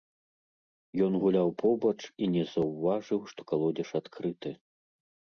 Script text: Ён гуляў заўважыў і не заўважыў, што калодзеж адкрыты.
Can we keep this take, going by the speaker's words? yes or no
no